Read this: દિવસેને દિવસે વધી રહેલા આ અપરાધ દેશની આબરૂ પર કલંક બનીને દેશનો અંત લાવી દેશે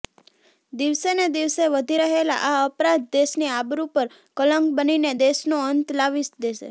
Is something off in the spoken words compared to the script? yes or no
no